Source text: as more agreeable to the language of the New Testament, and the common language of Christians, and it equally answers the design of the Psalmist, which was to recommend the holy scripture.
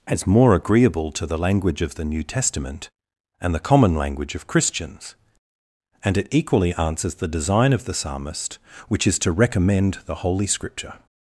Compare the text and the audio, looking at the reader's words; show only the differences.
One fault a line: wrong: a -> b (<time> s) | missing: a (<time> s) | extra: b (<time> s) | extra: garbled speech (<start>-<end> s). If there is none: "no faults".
wrong: was -> is (9.1 s)